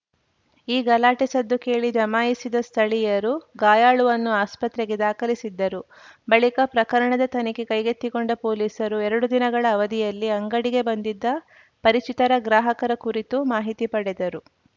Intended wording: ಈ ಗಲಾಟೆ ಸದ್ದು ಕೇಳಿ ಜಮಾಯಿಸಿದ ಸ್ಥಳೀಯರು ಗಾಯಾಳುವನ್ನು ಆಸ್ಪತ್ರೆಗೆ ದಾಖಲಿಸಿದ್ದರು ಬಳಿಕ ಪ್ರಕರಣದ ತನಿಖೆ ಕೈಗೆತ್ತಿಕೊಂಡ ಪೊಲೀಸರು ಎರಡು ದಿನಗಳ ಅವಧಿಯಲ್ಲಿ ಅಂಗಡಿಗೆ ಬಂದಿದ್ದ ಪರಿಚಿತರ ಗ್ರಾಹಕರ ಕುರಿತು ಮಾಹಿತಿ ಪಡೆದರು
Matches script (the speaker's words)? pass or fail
pass